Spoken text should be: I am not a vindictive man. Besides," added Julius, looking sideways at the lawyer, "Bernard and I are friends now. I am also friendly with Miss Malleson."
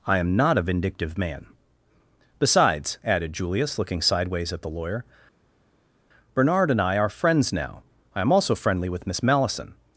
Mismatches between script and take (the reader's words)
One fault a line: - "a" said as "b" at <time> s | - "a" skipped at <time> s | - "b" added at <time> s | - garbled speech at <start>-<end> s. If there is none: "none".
none